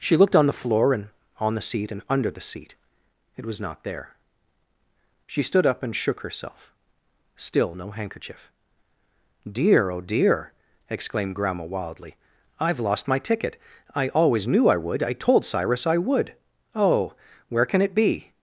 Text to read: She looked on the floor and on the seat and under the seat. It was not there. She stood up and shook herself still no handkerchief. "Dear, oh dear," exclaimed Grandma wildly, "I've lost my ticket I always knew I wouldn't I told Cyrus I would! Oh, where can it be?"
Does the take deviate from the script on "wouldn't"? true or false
true